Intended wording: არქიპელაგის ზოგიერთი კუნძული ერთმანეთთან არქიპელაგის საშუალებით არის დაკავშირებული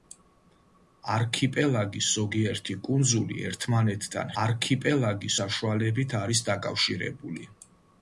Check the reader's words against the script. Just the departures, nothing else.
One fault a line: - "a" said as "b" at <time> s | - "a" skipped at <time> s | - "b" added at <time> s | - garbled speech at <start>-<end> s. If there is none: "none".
none